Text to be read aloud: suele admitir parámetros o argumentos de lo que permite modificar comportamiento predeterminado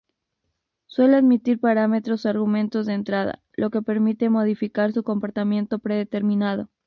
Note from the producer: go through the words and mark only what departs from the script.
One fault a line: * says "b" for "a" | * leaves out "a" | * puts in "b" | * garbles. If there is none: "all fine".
* puts in "entrada"
* puts in "su"